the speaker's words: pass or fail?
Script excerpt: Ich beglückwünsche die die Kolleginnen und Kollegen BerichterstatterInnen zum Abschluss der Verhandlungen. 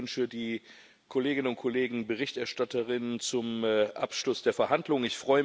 fail